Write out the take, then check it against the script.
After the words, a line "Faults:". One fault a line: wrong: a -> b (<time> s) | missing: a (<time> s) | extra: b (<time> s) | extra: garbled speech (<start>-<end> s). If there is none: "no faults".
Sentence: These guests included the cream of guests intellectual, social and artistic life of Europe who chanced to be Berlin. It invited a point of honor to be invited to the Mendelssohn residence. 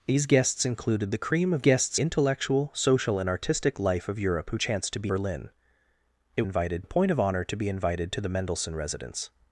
These guests included the cream of guests intellectual, social and artistic life of Europe who chanced to be Berlin. It invited a point of honor to be invited to the Mendelssohn residence.
Faults:
no faults